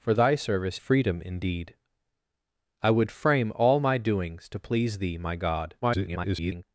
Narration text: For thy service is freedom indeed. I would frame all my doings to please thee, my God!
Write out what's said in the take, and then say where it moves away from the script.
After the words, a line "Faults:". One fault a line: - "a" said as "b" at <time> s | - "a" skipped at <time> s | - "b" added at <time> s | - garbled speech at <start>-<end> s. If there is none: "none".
For thy service freedom indeed. I would frame all my doings to please thee, my God! [garbled]
Faults:
- "is" skipped at 0.8 s
- garbled speech at 5.8-6.6 s